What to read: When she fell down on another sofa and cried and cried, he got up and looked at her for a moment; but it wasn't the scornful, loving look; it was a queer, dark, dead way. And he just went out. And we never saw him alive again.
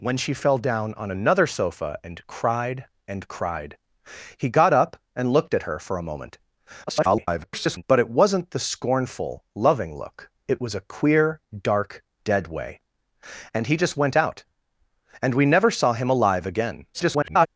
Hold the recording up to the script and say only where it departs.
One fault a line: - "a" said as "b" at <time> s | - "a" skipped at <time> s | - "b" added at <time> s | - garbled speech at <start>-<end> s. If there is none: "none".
- garbled speech at 6.9-7.8 s
- garbled speech at 16.9-17.5 s